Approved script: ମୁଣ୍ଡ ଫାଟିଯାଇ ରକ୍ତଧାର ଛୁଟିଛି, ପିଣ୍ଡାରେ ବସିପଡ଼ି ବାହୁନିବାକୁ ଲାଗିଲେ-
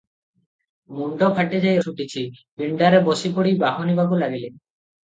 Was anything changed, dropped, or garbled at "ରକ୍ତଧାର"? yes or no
yes